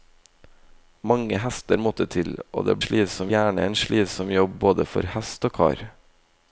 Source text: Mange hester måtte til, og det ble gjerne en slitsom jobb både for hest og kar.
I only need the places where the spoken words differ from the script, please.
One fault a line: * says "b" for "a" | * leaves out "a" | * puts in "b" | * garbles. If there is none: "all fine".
* says "slitsom" for "ble"